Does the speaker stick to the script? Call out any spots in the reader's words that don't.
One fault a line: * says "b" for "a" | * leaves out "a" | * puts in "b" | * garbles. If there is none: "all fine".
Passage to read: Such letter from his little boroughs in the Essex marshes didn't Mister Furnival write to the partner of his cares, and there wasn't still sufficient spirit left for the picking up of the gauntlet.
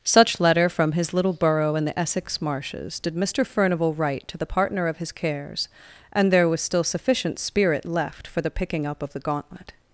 * says "borough" for "boroughs"
* says "did" for "didn't"
* says "was" for "wasn't"